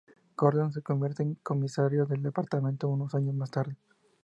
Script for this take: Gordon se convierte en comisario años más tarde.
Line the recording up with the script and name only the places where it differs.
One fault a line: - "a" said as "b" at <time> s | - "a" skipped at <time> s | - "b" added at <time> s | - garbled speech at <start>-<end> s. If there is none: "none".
- "del departamento unos" added at 2.1 s